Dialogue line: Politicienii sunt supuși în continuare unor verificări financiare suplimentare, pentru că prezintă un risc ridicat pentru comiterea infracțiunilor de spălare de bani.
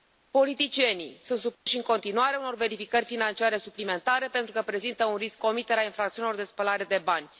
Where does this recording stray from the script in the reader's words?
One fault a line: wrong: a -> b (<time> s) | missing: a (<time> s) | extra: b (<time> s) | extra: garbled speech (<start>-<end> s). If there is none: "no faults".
missing: ridicat pentru (5.4 s)